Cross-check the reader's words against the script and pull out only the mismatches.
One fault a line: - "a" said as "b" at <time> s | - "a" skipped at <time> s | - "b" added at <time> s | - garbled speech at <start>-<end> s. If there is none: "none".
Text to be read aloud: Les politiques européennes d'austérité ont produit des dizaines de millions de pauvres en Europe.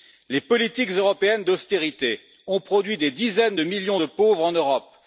none